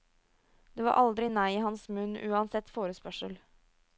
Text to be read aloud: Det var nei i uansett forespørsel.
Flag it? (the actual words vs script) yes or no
yes